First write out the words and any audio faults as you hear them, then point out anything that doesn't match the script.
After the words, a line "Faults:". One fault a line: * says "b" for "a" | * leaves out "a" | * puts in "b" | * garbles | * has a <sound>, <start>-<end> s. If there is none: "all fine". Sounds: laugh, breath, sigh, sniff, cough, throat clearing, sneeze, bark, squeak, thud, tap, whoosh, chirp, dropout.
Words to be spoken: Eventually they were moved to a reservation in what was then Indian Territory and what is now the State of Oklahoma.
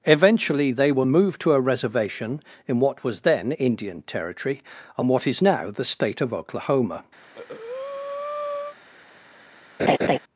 Eventually they were moved to a reservation in what was then Indian Territory and what is now the State of Oklahoma.
Faults:
* has a breath, 7.2-8.8 s
* has a laugh, 9.8-10.2 s